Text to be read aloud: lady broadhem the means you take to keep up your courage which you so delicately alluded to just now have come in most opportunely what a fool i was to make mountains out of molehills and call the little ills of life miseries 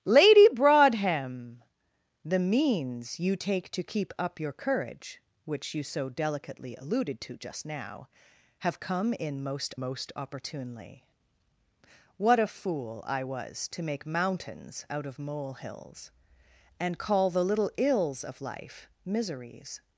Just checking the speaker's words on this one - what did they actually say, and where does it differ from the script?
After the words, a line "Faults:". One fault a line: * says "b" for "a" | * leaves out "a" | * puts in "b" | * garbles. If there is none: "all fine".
lady broadhem the means you take to keep up your courage which you so delicately alluded to just now have come in most most opportunely what a fool i was to make mountains out of molehills and call the little ills of life miseries
Faults:
* puts in "most"